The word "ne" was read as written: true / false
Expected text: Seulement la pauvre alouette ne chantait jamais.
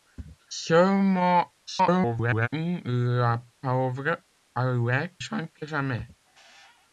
false